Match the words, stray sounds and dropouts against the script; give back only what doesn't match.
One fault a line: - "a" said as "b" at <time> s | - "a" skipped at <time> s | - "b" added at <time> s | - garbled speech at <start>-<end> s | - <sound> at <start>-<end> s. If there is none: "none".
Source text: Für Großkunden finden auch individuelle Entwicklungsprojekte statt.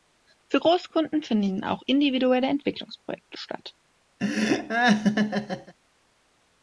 - laugh at 4.2-5.7 s